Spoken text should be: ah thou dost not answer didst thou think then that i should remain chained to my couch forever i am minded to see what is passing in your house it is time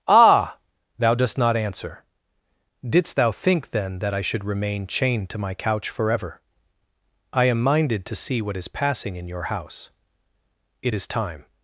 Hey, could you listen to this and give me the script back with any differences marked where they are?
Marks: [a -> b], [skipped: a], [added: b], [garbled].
ah thou dost not answer didst thou think then that i should remain chained to my couch forever i am minded to see what is passing in your house it is time